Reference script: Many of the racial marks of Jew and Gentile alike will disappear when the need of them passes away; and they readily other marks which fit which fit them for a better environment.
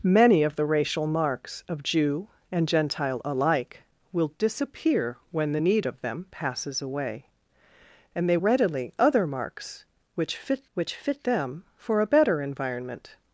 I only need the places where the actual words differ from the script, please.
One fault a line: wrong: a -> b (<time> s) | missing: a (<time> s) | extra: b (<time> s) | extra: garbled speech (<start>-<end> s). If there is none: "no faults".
no faults